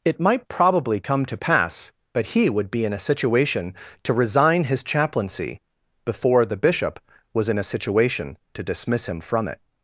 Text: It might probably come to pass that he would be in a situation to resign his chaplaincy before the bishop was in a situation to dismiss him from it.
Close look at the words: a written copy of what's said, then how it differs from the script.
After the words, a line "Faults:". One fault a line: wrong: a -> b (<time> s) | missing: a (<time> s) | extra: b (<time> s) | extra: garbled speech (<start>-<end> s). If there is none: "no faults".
It might probably come to pass but he would be in a situation to resign his chaplaincy before the bishop was in a situation to dismiss him from it.
Faults:
wrong: that -> but (2.1 s)